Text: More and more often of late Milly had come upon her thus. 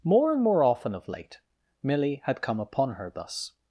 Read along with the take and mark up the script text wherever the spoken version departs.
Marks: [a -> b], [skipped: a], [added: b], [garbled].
More and more often of late Milly had come upon her thus.